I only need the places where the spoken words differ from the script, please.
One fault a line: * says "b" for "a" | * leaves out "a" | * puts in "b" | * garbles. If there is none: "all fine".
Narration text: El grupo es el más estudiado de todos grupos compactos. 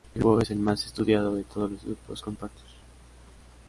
* puts in "los"